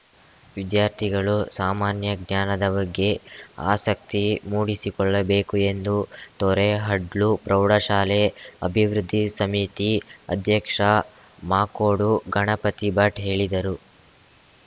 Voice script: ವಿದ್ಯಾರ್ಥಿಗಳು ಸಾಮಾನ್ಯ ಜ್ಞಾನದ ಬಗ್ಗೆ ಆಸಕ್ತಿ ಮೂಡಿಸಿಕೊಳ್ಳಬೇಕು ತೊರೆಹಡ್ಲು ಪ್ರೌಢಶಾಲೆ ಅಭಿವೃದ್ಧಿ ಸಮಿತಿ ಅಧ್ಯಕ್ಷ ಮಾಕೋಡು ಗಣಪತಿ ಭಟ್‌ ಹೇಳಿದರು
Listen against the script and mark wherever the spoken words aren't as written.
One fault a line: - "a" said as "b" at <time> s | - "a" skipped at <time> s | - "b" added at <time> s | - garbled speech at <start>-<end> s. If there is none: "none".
- "ಎಂದು" added at 5.7 s